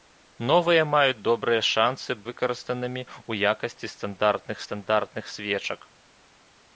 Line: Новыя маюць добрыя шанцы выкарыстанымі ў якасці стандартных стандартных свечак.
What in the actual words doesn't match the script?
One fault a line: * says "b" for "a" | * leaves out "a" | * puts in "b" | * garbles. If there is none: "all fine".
all fine